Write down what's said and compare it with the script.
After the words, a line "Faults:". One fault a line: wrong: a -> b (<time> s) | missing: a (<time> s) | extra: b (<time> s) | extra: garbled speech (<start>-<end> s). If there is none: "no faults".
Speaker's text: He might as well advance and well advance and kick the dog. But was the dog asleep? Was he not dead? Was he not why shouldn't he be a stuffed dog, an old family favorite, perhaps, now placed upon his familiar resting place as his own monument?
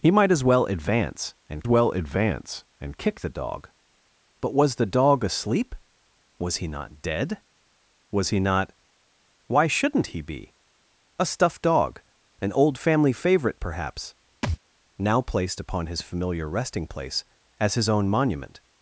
He might as well advance and well advance and kick the dog. But was the dog asleep? Was he not dead? Was he not why shouldn't he be a stuffed dog, an old family favorite, perhaps, now placed upon his familiar resting place as his own monument?
Faults:
no faults